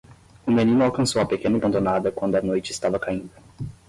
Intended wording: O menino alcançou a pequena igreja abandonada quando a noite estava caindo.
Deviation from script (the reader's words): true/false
true